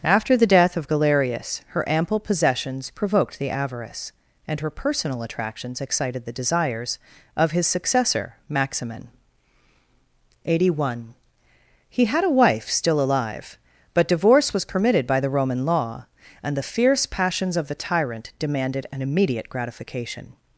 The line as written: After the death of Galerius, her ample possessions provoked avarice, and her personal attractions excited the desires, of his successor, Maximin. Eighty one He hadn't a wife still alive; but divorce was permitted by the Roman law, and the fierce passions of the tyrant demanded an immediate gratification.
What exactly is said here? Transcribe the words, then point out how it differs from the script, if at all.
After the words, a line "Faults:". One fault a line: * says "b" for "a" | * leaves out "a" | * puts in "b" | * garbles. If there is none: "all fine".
After the death of Galerius, her ample possessions provoked the avarice, and her personal attractions excited the desires, of his successor, Maximin. Eighty one He had a wife still alive; but divorce was permitted by the Roman law, and the fierce passions of the tyrant demanded an immediate gratification.
Faults:
* puts in "the"
* says "had" for "hadn't"